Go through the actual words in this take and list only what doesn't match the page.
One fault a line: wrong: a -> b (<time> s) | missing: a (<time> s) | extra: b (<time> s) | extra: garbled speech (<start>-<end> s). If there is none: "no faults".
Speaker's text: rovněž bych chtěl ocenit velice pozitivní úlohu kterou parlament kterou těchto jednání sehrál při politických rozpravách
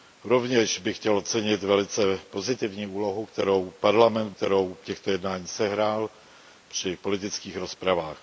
no faults